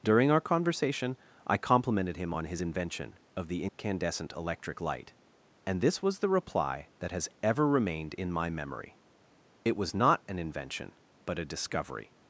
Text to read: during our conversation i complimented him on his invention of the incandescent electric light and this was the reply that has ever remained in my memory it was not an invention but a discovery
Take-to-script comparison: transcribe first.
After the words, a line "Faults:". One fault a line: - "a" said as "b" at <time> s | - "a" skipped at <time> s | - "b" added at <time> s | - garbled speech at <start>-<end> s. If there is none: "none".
during our conversation i complimented him on his invention of the incandescent electric light and this was the reply that has ever remained in my memory it was not an invention but a discovery
Faults:
none